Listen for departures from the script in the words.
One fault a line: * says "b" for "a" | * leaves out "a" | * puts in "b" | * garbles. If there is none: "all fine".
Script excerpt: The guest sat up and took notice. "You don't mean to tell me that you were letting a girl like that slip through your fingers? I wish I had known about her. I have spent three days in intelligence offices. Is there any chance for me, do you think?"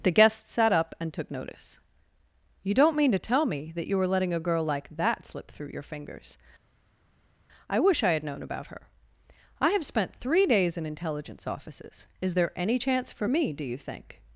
all fine